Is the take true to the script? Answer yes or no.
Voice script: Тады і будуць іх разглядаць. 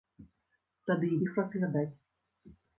no